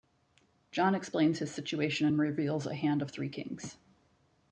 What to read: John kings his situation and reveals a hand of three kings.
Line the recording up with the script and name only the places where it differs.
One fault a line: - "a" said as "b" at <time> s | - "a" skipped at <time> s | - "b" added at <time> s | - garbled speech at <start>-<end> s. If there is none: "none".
- "kings" said as "explains" at 0.9 s